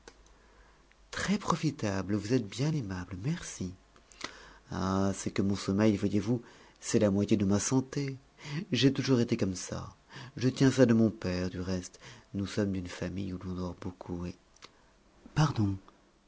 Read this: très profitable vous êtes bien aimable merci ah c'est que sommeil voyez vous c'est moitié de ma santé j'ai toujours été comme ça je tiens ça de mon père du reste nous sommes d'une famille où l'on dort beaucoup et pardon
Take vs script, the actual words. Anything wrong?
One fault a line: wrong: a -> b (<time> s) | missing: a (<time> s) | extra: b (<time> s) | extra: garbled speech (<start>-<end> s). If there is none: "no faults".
extra: mon (5.4 s)
extra: la (7.0 s)